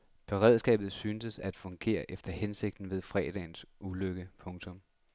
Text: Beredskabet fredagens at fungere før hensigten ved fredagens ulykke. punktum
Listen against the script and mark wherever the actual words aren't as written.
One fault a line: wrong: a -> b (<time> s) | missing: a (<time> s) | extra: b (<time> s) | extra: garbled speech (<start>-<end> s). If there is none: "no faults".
wrong: fredagens -> syntes (0.9 s)
wrong: før -> efter (2.1 s)